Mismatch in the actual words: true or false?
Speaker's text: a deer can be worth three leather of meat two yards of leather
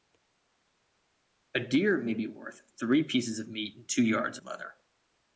true